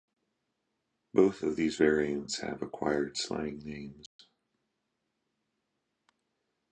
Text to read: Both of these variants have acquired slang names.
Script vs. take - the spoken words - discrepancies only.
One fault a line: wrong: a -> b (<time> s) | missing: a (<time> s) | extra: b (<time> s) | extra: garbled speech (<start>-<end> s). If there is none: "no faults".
no faults